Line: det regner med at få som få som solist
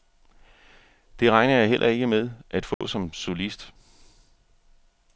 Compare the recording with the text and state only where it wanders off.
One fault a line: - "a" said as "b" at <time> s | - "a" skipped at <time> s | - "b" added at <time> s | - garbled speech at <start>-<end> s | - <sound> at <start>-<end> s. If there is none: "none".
- "jeg heller ikke" added at 1.5 s
- dropout at 2.7-2.8 s
- "få som" skipped at 3.1 s